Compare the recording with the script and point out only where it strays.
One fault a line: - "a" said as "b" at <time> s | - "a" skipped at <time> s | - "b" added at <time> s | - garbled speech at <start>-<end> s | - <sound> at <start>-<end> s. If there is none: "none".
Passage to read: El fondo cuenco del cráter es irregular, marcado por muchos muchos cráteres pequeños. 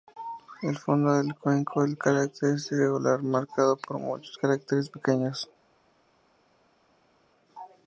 - "del" added at 1.1 s
- "muchos" skipped at 4.3 s